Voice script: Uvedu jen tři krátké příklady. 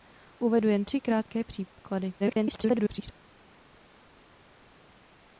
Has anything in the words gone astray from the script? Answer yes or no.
yes